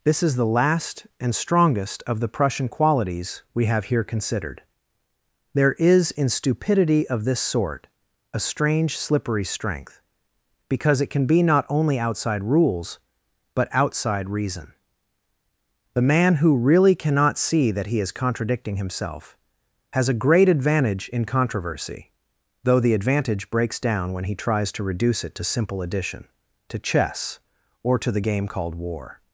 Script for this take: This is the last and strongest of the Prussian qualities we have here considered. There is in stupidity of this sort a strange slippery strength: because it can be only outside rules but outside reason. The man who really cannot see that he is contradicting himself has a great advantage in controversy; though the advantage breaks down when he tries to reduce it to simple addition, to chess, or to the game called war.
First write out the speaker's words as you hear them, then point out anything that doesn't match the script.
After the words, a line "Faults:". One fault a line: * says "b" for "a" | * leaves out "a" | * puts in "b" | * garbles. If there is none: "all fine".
This is the last and strongest of the Prussian qualities we have here considered. There is in stupidity of this sort a strange slippery strength: because it can be not only outside rules but outside reason. The man who really cannot see that he is contradicting himself has a great advantage in controversy; though the advantage breaks down when he tries to reduce it to simple addition, to chess, or to the game called war.
Faults:
* puts in "not"